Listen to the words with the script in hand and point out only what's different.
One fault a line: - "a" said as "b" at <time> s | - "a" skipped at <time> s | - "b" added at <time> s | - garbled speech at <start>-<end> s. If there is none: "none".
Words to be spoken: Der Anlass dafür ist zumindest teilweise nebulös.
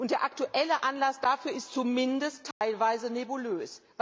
- "aktuelle" added at 0.2 s